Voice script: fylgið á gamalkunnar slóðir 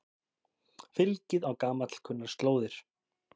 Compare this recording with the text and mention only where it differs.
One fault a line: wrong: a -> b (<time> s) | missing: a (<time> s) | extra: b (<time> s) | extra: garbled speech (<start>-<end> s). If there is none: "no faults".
no faults